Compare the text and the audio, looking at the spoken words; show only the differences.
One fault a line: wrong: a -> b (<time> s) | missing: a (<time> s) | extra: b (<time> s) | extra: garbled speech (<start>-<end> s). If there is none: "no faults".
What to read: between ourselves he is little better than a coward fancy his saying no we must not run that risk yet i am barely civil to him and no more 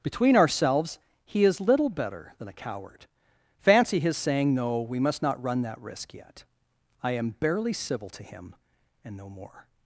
no faults